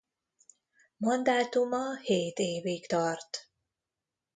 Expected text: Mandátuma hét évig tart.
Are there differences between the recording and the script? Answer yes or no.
no